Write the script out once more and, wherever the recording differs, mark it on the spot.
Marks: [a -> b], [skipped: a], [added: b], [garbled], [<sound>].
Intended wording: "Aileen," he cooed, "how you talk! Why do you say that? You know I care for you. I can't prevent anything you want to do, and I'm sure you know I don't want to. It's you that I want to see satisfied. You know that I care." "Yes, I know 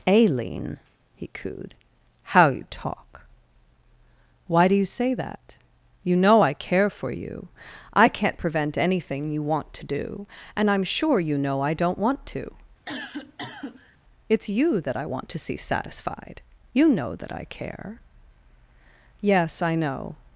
"Aileen," he cooed, "how you talk! Why do you say that? You know I care for you. I can't prevent anything you want to do, and I'm sure you know I don't want to. [cough] It's you that I want to see satisfied. You know that I care." "Yes, I know